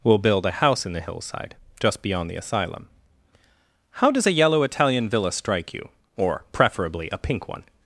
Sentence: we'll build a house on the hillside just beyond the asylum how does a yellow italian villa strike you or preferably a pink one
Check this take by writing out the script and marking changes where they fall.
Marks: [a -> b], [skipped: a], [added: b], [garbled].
we'll build a house [on -> in] the hillside just beyond the asylum how does a yellow italian villa strike you or preferably a pink one